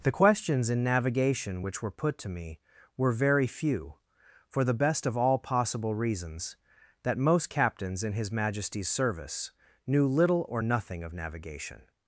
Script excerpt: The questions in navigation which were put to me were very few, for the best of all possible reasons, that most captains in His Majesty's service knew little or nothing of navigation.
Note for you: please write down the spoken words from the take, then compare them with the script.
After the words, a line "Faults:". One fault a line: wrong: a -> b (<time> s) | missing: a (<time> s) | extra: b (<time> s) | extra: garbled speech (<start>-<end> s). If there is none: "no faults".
The questions in navigation which were put to me were very few, for the best of all possible reasons, that most captains in His Majesty's service knew little or nothing of navigation.
Faults:
no faults